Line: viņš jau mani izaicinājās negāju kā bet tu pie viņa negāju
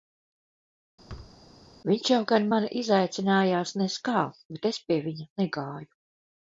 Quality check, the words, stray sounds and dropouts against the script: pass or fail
fail